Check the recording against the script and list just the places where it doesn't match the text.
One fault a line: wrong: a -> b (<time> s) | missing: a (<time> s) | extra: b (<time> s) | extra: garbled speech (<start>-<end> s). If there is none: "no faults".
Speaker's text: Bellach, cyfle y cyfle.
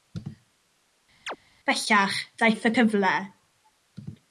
wrong: cyfle -> daeth (2.4 s)